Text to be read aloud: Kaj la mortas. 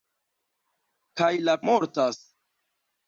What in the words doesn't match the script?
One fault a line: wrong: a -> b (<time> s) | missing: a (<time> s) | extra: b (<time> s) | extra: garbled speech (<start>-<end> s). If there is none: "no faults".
no faults